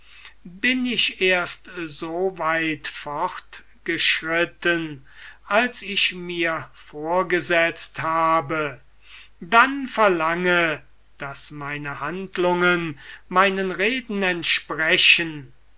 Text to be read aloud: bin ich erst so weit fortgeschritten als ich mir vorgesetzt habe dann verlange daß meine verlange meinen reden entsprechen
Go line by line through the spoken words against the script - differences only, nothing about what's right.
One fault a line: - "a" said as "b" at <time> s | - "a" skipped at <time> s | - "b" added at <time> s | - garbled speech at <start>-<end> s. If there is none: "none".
- "verlange" said as "handlungen" at 12.0 s